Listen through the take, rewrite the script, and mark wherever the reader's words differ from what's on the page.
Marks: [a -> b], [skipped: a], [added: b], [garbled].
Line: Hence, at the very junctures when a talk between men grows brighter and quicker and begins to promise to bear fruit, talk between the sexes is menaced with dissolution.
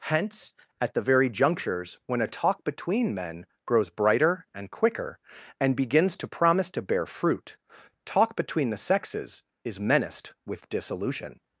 Hence, at the very junctures when a talk between men grows brighter and quicker and begins to promise to bear fruit, talk between the sexes is menaced with dissolution.